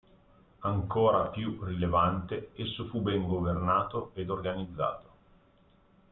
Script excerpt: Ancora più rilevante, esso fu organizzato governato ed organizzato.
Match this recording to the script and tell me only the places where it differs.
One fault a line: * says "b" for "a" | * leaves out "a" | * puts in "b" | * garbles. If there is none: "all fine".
* says "ben" for "organizzato"